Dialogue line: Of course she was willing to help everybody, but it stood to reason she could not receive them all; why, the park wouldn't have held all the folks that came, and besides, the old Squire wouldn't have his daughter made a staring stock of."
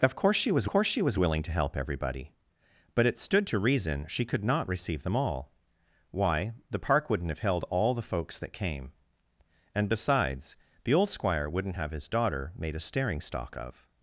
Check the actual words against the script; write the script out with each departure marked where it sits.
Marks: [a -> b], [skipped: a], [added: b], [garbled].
Of course she was [added: course she was] willing to help everybody, but it stood to reason she could not receive them all; why, the park wouldn't have held all the folks that came, and besides, the old Squire wouldn't have his daughter made a staring stock of."